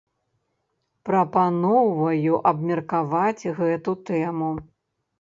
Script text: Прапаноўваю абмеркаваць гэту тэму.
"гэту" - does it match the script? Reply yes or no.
yes